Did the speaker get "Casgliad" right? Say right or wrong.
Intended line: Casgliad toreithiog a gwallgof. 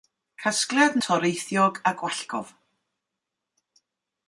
right